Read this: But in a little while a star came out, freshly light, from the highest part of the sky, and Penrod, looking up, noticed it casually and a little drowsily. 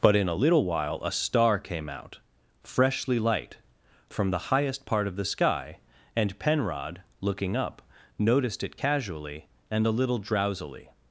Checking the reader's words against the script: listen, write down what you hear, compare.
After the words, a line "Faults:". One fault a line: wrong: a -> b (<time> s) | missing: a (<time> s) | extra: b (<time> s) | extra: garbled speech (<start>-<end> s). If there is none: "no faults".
But in a little while a star came out, freshly light, from the highest part of the sky, and Penrod, looking up, noticed it casually and a little drowsily.
Faults:
no faults